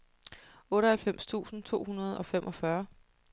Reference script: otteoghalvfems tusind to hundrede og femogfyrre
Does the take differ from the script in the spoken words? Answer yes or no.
no